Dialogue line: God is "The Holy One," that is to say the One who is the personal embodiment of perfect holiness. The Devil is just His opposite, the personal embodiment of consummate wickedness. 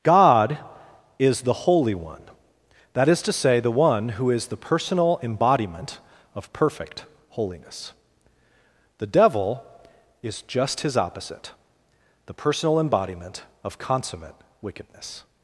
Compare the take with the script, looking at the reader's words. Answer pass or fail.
pass